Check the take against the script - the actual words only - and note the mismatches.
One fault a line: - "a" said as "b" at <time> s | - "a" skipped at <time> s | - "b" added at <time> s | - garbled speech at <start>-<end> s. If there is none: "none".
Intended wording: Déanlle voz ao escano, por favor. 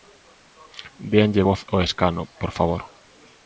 none